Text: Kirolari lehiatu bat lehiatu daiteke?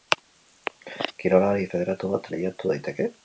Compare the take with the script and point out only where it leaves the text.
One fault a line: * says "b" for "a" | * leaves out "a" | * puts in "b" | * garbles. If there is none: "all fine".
* says "federatu" for "lehiatu"